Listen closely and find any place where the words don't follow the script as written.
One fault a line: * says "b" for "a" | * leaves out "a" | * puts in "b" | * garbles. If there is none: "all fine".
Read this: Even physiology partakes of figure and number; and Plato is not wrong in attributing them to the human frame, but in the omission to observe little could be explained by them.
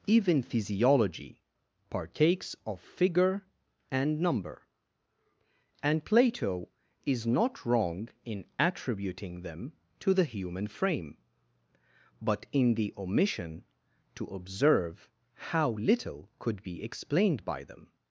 * puts in "how"